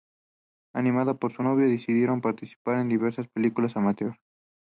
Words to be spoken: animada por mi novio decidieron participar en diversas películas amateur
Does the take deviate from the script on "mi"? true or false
true